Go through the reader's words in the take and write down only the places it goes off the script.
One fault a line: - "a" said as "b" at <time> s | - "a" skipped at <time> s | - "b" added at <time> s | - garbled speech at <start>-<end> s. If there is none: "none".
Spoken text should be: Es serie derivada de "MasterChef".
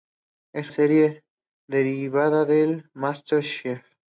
none